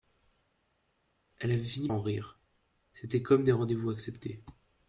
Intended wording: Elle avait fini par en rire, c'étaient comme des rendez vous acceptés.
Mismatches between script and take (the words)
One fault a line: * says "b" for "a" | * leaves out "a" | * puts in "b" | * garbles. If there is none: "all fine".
* leaves out "par"